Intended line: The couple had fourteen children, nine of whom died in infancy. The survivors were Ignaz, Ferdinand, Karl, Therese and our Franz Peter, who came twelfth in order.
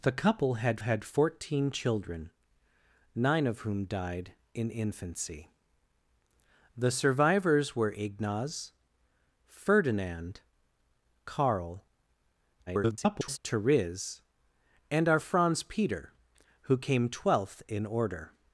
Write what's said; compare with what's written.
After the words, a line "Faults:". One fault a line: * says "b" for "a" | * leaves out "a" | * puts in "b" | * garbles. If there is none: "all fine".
The couple had had fourteen children, nine of whom died in infancy. The survivors were Ignaz, Ferdinand, Karl, [garbled] Therese and our Franz Peter, who came twelfth in order.
Faults:
* puts in "had"
* garbles